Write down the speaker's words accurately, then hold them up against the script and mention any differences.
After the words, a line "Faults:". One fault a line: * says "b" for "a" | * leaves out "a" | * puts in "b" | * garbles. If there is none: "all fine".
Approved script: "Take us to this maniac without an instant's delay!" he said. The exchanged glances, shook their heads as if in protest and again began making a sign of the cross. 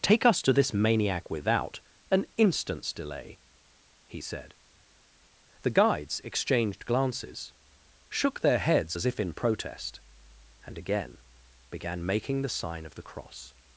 "Take us to this maniac without an instant's delay!" he said. The guides exchanged glances, shook their heads as if in protest and again began making the sign of the cross.
Faults:
* puts in "guides"
* says "the" for "a"